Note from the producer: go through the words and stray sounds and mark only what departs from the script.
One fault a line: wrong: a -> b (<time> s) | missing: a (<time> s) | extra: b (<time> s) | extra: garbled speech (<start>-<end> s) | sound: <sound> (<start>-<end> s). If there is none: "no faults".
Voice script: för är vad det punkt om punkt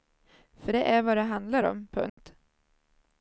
extra: det (0.7 s)
wrong: punkt -> handlar (1.2 s)
sound: dropout (2.1-2.2 s)